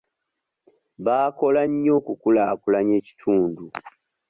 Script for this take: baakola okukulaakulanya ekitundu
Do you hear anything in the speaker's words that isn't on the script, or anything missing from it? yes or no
yes